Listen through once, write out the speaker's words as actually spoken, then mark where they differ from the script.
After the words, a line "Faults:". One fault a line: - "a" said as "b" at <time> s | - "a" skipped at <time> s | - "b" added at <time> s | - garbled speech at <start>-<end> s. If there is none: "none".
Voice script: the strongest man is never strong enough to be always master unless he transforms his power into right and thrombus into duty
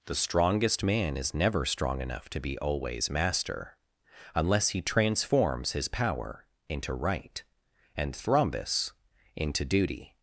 the strongest man is never strong enough to be always master unless he transforms his power into right and thrombus into duty
Faults:
none